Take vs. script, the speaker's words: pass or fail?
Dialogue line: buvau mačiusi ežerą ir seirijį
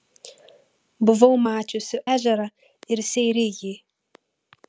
pass